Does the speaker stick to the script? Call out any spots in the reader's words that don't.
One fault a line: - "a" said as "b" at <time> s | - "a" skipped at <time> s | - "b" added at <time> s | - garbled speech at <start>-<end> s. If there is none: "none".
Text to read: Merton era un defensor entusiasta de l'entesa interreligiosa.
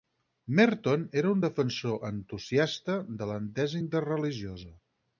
none